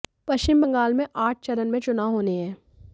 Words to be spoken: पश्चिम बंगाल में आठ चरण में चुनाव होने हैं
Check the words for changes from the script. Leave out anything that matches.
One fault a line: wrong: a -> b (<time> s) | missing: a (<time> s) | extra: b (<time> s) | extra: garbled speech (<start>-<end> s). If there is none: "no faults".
no faults